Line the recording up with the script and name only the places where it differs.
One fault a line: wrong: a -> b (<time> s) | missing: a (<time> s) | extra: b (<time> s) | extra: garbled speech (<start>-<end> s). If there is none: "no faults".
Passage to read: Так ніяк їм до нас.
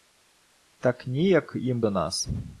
no faults